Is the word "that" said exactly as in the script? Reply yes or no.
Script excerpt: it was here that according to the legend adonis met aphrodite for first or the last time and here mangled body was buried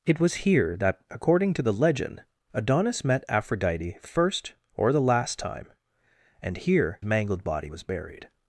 yes